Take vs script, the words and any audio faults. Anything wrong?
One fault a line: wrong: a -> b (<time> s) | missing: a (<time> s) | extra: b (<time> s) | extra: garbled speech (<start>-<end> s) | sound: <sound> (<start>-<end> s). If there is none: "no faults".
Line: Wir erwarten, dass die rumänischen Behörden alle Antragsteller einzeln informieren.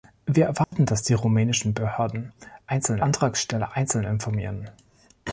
sound: dropout (0.6-0.7 s)
wrong: alle -> einzeln (2.7 s)